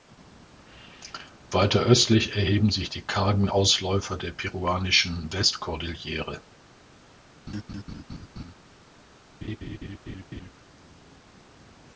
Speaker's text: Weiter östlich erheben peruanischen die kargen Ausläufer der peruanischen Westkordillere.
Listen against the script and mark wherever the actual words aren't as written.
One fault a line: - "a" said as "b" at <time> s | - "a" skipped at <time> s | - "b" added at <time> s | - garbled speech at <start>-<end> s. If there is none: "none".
- "peruanischen" said as "sich" at 2.7 s